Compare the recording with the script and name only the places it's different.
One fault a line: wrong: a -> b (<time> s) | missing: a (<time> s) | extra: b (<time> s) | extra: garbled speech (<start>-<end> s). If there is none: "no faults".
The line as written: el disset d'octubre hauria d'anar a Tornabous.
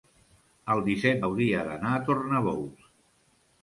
missing: d'octubre (1.2 s)